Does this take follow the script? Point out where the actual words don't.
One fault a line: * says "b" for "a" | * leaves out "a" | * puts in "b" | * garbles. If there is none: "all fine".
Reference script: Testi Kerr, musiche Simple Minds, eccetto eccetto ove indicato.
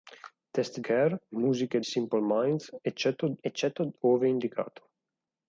all fine